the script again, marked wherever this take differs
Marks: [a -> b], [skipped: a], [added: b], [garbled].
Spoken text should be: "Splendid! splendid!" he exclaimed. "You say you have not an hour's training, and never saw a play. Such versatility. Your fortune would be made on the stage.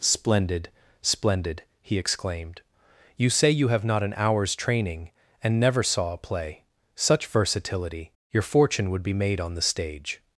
"Splendid! splendid!" he exclaimed. "You say you have not an hour's training, and never saw a play. Such versatility. Your fortune would be made on the stage.